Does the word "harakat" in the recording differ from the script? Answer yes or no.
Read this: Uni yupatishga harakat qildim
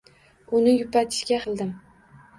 yes